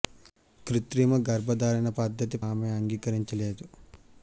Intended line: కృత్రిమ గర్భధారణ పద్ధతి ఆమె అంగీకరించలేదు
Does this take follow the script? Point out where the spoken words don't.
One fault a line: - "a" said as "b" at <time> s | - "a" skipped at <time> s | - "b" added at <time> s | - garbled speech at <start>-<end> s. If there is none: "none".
none